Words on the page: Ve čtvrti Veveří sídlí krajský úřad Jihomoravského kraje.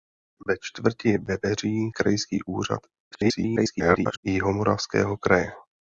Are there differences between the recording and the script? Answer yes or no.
yes